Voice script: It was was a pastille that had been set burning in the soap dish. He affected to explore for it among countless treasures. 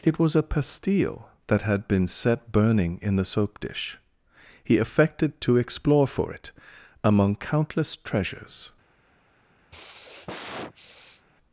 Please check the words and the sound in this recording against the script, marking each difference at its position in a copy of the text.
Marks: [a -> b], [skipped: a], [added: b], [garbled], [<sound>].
It was [skipped: was] a pastille that had been set burning in the soap dish. He affected to explore for it among countless treasures. [sigh]